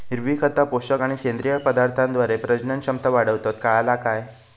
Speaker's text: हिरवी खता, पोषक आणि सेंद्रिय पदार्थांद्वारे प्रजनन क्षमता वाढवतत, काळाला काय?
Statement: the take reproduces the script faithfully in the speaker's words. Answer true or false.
true